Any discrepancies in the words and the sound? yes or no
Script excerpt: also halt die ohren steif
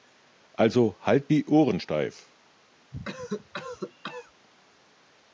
yes